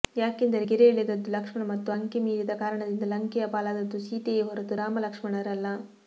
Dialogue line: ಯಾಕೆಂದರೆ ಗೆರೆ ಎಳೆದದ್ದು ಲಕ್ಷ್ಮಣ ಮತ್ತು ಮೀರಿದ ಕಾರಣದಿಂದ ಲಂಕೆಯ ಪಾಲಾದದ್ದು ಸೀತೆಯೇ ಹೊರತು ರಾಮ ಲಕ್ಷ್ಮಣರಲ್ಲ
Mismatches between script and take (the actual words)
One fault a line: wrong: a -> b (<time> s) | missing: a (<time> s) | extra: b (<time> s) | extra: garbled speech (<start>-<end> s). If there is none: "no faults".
extra: ಅಂಕೆ (1.9 s)